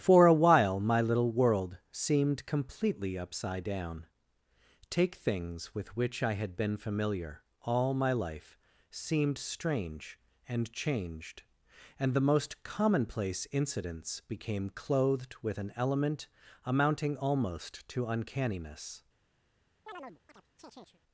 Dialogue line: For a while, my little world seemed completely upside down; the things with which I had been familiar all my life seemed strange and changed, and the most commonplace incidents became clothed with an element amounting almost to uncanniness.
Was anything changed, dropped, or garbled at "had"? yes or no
no